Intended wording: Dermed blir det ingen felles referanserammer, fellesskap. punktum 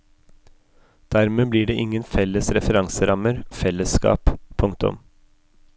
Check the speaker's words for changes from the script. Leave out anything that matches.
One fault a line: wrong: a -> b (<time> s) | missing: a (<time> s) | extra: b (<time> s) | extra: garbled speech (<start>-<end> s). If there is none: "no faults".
no faults